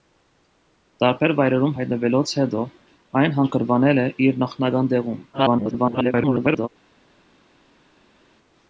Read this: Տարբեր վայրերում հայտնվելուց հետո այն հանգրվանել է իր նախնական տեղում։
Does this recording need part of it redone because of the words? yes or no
yes